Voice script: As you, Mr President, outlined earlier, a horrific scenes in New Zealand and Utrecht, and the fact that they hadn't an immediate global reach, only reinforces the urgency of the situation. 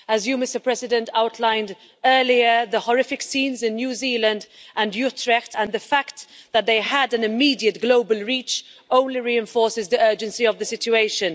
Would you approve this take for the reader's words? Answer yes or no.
no